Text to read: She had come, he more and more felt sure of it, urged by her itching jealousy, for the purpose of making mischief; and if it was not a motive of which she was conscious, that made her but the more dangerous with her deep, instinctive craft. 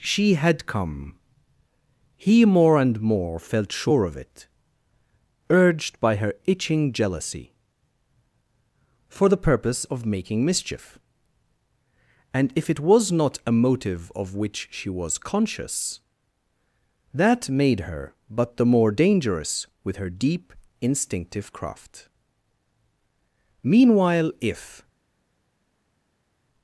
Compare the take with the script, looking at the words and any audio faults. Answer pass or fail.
fail